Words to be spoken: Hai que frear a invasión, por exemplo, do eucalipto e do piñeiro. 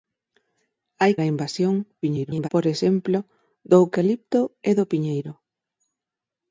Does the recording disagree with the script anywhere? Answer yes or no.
yes